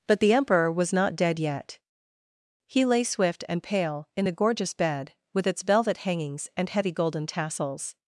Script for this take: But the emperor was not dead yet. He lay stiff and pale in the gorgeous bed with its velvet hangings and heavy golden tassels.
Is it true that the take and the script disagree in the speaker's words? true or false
true